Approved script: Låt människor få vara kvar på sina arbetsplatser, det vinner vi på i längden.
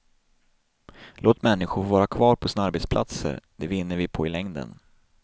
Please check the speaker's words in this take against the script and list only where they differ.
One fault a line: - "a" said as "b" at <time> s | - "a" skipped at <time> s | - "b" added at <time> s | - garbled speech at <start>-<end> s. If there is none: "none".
none